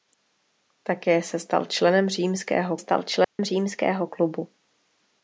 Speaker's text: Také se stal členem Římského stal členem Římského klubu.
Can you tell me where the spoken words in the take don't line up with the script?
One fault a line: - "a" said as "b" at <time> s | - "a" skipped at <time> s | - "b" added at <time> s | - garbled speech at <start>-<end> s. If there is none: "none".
none